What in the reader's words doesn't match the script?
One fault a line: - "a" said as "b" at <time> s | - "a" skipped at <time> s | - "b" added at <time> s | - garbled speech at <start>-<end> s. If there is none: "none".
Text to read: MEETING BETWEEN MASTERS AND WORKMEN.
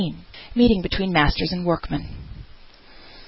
none